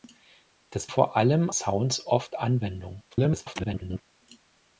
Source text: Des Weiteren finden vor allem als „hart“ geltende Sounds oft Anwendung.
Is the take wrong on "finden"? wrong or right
wrong